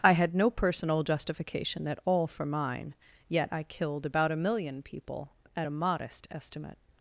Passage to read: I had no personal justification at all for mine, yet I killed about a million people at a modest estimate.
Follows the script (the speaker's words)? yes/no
yes